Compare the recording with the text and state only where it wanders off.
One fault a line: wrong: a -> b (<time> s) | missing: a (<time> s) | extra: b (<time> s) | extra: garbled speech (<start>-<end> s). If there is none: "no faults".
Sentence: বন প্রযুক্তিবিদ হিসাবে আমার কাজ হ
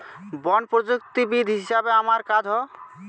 no faults